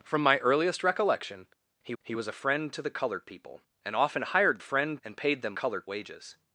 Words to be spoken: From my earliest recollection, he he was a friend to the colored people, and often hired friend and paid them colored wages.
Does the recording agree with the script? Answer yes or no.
yes